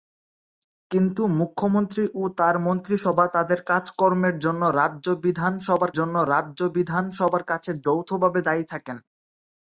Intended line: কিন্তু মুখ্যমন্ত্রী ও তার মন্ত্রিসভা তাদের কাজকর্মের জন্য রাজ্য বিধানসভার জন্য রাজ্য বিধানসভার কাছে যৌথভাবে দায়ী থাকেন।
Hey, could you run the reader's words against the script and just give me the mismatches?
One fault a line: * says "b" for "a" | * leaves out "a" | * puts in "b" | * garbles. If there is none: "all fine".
all fine